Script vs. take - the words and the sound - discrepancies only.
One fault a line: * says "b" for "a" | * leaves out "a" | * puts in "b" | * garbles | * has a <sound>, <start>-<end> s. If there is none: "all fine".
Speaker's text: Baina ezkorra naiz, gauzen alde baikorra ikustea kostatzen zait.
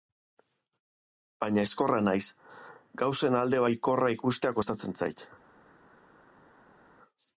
all fine